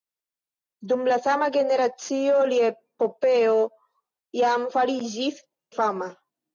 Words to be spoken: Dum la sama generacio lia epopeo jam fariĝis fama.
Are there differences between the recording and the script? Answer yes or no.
no